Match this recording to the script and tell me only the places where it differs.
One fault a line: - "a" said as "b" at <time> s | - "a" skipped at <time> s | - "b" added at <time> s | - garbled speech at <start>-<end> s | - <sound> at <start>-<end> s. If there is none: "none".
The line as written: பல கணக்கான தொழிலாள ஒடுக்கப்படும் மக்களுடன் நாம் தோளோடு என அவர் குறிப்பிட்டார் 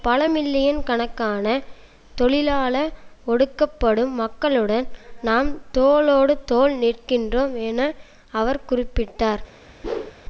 - "மில்லியன்" added at 0.3 s
- "தோள் நிற்கின்றோம்" added at 6.5 s
- whoosh at 9.8-10.1 s